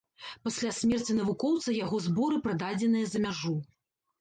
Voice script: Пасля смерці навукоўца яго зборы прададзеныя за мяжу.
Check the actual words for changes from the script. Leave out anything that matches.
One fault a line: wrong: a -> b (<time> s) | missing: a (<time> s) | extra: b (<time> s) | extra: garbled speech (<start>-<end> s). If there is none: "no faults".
no faults